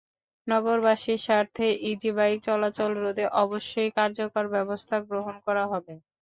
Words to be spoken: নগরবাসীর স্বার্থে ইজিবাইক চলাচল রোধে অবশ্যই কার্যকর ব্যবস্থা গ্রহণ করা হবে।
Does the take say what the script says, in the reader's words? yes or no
yes